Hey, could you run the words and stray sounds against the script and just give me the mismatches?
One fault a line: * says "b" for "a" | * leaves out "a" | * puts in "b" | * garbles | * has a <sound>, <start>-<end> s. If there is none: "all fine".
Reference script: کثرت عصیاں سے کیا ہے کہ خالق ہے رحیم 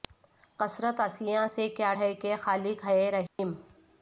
* has a dropout, 3.3-3.4 s